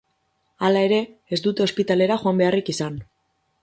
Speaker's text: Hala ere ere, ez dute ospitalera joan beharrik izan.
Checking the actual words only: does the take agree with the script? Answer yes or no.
no